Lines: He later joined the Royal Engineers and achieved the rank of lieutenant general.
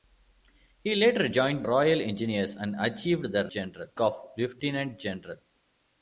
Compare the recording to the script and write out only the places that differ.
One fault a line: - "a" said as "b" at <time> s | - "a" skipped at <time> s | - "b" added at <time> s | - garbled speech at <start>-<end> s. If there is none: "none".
- "the" skipped at 1.7 s
- "rank" said as "general" at 3.5 s